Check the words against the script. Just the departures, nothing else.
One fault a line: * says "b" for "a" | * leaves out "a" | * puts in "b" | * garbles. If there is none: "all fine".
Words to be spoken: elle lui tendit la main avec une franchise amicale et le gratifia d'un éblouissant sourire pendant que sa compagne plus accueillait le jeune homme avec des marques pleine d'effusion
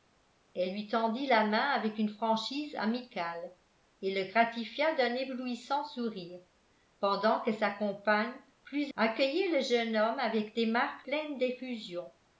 all fine